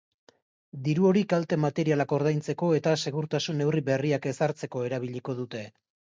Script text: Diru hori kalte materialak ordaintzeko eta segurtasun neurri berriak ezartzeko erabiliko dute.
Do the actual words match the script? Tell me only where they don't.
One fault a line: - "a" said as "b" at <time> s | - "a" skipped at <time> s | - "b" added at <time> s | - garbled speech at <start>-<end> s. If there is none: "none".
none